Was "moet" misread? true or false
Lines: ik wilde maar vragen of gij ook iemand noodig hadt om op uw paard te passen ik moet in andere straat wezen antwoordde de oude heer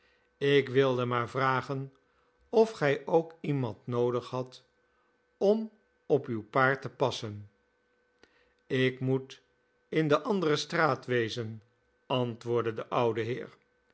false